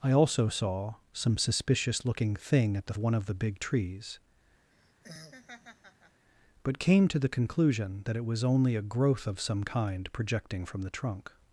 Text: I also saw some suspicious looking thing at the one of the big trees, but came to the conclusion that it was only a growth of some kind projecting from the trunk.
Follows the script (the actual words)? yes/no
yes